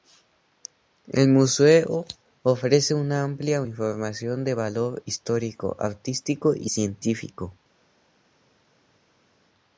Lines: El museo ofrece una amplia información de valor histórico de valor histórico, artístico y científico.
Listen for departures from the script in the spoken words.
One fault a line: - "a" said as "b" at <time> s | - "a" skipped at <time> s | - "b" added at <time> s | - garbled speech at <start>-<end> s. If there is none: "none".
- "de valor histórico" skipped at 5.8 s